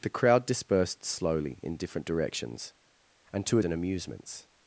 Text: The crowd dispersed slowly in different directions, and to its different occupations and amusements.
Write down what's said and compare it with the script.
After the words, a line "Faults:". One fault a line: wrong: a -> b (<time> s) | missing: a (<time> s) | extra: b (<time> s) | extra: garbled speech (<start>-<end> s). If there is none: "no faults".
The crowd dispersed slowly in different directions, and to and amusements.
Faults:
missing: its different occupations (3.6 s)